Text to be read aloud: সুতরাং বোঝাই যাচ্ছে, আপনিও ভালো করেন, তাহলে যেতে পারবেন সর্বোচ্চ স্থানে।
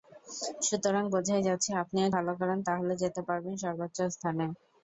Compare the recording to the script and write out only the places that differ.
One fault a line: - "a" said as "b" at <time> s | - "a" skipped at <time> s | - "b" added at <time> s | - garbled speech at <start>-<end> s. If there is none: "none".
none